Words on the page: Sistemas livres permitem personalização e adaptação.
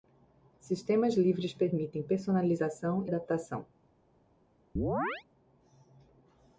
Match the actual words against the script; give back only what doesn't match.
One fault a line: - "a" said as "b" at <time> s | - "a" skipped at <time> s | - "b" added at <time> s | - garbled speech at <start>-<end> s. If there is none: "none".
- "e" skipped at 3.0 s